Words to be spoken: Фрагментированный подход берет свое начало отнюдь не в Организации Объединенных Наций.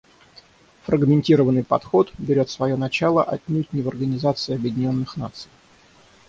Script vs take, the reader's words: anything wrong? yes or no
no